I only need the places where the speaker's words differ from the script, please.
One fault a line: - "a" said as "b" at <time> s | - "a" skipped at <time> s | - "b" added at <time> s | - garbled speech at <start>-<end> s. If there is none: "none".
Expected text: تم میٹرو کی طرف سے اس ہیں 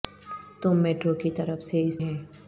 none